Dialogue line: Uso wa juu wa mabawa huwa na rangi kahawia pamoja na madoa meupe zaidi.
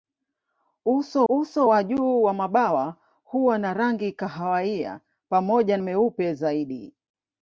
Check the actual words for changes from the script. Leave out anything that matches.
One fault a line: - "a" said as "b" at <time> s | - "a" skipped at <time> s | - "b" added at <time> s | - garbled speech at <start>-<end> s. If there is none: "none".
- "uso" added at 1.3 s
- "na madoa" skipped at 5.8 s